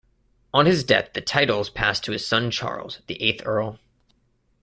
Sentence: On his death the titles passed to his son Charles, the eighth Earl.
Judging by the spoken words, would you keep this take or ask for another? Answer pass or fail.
pass